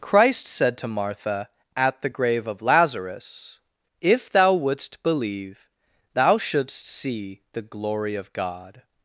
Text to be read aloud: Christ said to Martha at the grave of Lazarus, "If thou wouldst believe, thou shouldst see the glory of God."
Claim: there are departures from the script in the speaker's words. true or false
false